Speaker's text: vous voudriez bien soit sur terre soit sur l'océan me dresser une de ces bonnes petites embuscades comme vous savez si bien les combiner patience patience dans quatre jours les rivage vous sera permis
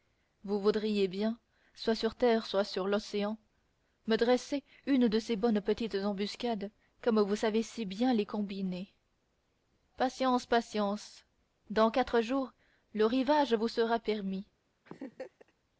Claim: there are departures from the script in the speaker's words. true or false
true